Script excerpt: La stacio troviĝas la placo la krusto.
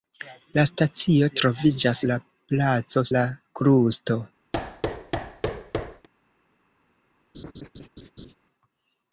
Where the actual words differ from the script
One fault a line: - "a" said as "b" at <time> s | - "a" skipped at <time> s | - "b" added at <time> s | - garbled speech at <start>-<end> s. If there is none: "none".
none